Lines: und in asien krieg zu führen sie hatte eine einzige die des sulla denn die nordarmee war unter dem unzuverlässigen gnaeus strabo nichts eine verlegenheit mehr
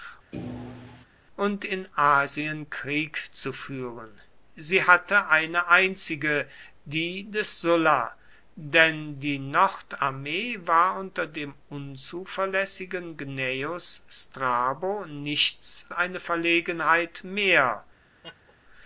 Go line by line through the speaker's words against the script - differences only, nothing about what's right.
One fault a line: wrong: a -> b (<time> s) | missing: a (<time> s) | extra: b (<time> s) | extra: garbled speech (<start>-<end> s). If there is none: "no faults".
no faults